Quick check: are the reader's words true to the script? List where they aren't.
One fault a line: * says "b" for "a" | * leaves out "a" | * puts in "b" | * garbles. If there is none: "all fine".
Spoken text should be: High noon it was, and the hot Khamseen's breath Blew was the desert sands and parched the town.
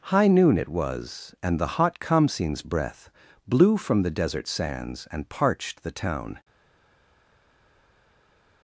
* says "from" for "was"